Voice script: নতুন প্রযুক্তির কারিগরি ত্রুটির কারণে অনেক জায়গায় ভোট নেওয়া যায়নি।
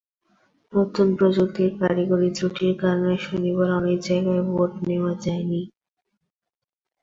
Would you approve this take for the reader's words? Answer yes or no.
no